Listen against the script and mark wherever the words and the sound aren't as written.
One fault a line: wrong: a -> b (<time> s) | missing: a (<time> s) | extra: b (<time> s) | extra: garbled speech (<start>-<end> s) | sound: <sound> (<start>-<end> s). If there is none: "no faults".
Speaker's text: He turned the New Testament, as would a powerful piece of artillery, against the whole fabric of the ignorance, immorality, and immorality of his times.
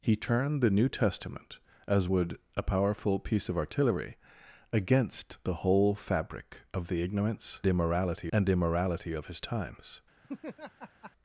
sound: laugh (10.2-11.1 s)